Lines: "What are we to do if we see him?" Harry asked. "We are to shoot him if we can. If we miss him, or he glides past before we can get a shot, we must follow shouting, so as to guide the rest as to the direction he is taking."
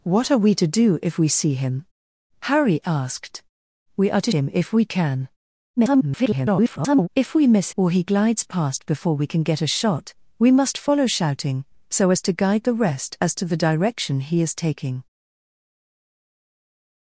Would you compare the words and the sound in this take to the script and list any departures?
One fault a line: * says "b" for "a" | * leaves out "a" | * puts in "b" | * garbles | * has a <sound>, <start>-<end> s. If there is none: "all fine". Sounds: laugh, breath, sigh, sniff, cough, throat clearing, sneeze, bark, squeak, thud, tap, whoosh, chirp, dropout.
* leaves out "shoot"
* garbles
* leaves out "him"